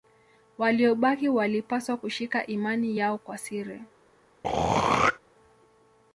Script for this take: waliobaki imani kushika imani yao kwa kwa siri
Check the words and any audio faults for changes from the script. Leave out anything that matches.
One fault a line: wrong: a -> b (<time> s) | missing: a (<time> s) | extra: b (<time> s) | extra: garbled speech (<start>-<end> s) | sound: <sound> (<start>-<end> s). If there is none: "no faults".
wrong: imani -> walipaswa (1.3 s)
missing: kwa (3.4 s)
sound: throat clearing (4.4-5.2 s)